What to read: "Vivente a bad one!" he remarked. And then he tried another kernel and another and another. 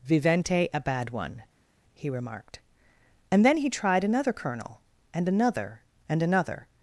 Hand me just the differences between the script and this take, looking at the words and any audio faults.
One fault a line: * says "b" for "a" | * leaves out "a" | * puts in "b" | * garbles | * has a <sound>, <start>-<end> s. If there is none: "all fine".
all fine